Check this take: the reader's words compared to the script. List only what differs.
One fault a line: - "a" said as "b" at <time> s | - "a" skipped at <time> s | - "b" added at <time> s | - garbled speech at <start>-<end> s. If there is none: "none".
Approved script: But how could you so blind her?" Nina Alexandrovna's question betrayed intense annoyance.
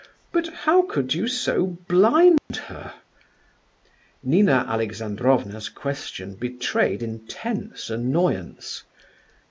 none